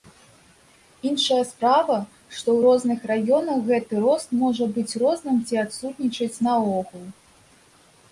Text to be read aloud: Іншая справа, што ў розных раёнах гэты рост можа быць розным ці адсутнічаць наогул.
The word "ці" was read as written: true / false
true